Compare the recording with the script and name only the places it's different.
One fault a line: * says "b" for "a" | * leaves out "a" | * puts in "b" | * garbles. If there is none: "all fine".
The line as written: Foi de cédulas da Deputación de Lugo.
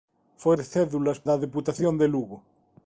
all fine